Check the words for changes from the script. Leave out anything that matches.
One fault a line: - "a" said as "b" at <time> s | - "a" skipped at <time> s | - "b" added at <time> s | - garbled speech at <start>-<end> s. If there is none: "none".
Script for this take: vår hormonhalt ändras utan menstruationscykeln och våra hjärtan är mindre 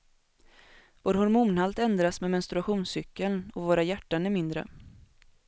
- "utan" said as "med" at 2.2 s